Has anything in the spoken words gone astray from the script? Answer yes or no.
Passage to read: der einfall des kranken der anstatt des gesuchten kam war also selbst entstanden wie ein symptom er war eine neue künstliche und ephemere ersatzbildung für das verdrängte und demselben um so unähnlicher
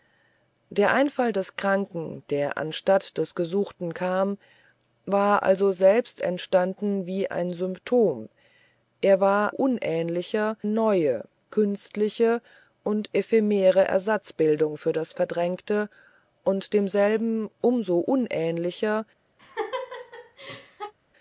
yes